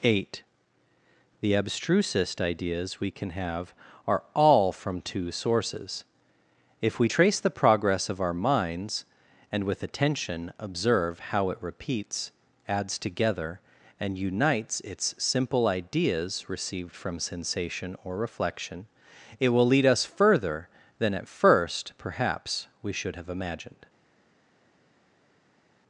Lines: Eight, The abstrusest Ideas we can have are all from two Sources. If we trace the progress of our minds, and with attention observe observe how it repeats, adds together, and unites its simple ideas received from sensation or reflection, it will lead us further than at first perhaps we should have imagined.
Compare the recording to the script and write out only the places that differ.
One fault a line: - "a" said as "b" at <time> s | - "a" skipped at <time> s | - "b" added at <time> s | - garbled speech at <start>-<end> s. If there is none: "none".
- "observe" skipped at 11.2 s